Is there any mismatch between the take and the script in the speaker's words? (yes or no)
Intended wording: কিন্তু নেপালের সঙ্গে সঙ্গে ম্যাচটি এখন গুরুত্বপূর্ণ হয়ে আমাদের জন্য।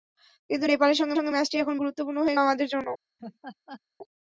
no